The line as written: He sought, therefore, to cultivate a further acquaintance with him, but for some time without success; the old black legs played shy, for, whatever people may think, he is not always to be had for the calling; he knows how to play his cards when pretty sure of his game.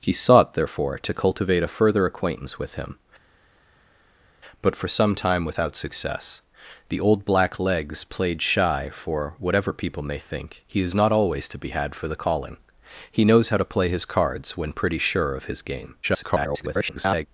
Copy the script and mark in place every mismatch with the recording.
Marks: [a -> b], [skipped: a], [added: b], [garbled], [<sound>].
He sought, therefore, to cultivate a further acquaintance with him, but for some time without success; the old black legs played shy, for, whatever people may think, he is not always to be had for the calling; he knows how to play his cards when pretty sure of his game. [garbled]